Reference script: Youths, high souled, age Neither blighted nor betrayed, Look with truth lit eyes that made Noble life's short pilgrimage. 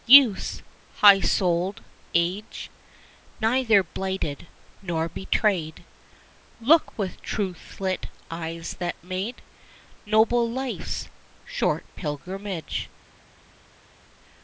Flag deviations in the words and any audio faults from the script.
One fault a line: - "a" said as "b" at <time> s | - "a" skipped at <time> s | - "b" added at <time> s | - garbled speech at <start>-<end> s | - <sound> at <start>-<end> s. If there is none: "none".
none